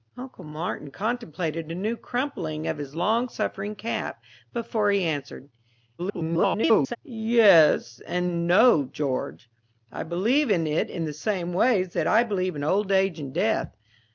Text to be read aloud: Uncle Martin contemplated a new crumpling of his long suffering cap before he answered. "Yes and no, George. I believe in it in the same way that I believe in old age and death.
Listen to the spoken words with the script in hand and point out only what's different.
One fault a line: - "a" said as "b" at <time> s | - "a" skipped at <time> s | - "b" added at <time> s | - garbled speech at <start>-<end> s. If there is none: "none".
- garbled speech at 6.0-7.0 s